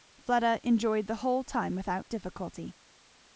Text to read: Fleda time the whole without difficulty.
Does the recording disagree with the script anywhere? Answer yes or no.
yes